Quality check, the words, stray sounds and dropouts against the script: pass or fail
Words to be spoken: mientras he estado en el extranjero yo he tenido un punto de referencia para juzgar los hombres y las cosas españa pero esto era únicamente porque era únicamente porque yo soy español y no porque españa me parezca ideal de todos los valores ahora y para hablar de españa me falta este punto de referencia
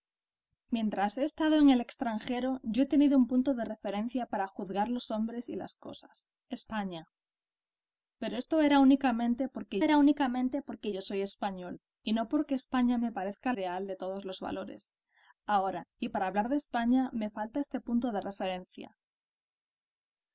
pass